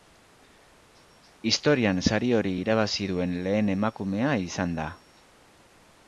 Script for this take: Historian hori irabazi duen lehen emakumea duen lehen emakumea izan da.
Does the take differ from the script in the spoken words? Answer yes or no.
yes